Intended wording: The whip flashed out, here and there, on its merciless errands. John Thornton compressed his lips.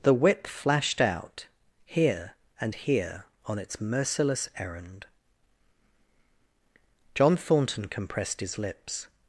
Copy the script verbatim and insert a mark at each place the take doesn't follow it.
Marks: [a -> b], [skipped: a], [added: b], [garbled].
The whip flashed out, here and [there, -> here] on its merciless [errands. -> errand] John Thornton compressed his lips.